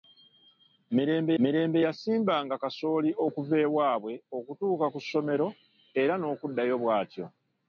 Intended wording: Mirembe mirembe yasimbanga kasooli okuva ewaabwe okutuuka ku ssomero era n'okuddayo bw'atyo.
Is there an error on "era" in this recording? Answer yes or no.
no